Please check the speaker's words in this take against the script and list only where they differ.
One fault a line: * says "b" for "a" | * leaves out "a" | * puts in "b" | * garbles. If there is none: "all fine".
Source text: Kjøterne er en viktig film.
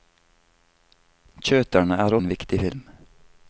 all fine